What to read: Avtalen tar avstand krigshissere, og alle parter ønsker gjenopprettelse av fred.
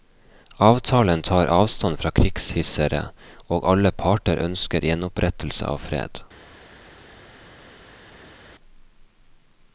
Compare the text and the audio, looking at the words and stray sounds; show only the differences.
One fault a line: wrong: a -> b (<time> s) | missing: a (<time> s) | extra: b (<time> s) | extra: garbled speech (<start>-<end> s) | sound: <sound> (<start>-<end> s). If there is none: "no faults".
extra: fra (2.0 s)